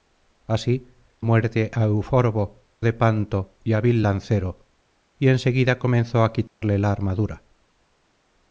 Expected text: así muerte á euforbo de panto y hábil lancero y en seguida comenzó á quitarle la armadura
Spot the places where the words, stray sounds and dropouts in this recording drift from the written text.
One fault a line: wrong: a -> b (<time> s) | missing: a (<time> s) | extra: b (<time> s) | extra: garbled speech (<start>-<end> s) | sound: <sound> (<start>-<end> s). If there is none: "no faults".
sound: dropout (6.5-6.6 s)